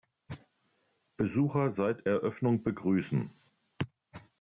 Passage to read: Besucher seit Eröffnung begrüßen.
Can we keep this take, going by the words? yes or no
yes